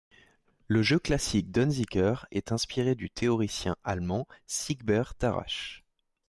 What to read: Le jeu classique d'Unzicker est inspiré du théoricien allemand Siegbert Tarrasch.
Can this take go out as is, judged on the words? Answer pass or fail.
pass